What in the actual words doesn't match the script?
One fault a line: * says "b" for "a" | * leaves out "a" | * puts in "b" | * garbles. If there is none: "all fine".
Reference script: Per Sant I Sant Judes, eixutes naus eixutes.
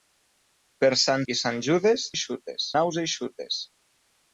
all fine